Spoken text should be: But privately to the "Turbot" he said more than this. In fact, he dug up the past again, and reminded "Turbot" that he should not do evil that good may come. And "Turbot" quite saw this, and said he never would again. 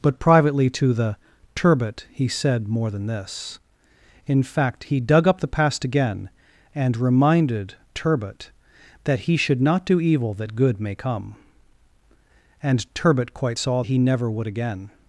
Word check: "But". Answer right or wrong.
right